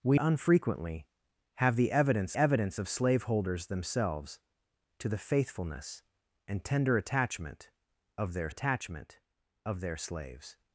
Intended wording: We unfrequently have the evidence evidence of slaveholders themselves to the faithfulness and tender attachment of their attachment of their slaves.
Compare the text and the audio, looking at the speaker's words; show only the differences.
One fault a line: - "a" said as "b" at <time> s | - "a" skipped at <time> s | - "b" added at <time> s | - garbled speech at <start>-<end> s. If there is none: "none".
none